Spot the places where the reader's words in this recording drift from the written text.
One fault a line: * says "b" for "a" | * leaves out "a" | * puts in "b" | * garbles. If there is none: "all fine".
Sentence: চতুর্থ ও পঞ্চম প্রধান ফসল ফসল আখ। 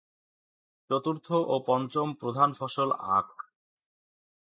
* leaves out "ফসল"